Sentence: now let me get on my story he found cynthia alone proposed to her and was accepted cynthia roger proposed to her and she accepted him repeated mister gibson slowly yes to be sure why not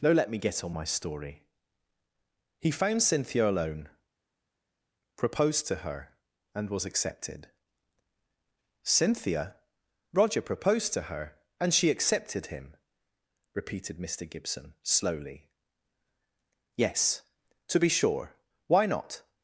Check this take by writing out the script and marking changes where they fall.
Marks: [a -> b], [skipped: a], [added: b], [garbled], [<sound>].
now let me get on my story he found cynthia alone proposed to her and was accepted cynthia roger proposed to her and she accepted him repeated mister gibson slowly yes to be sure why not